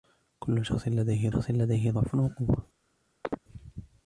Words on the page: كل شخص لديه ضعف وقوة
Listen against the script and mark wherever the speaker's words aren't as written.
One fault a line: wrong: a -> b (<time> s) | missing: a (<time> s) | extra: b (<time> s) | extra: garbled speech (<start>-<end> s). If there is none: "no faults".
extra: شخص لديه (1.3 s)